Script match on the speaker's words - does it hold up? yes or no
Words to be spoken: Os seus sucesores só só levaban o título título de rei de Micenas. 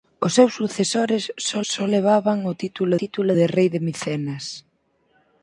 yes